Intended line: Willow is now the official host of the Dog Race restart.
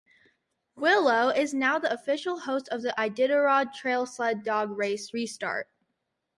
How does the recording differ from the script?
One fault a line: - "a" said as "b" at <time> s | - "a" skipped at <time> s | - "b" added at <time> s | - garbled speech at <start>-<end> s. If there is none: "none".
- "Iditarod Trail Sled" added at 3.0 s